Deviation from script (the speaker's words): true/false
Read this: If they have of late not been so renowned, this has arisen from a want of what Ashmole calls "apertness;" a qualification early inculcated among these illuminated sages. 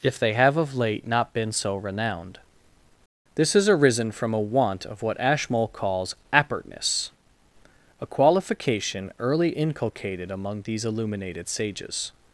false